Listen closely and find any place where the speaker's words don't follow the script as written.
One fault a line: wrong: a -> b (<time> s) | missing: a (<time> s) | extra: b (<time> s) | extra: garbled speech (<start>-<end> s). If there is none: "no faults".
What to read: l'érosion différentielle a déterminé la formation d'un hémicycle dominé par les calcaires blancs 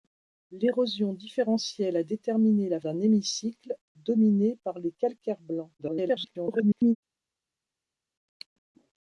missing: formation (2.8 s)
extra: garbled speech (5.8-7.0 s)